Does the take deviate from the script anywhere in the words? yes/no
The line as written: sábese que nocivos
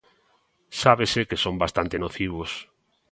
yes